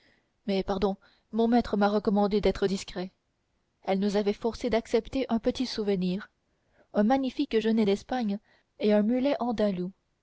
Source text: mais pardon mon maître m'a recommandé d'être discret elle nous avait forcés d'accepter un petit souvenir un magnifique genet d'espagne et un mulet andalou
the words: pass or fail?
pass